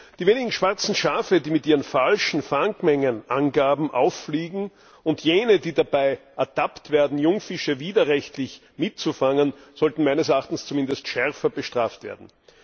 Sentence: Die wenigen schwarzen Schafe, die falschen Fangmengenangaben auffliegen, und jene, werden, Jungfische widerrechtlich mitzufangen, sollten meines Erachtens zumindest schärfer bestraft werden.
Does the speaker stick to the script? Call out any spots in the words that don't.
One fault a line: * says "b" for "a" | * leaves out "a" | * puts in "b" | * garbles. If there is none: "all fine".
* puts in "mit ihren"
* puts in "die dabei ertappt"